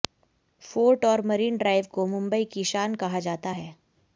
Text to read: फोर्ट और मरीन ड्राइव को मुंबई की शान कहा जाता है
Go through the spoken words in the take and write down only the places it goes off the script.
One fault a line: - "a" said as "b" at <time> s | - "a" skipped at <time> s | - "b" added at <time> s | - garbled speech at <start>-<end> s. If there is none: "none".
none